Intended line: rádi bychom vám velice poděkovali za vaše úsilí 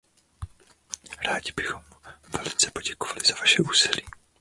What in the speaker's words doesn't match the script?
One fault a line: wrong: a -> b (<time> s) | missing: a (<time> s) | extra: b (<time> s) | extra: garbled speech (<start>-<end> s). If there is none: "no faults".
missing: vám (1.8 s)